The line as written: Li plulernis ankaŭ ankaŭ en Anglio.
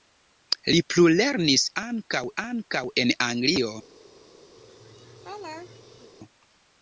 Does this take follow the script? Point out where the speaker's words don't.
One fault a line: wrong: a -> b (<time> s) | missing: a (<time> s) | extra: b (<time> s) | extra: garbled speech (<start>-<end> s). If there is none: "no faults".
no faults